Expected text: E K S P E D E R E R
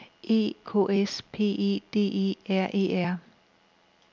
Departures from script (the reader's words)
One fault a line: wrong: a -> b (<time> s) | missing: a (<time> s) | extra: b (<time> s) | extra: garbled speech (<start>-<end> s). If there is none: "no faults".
no faults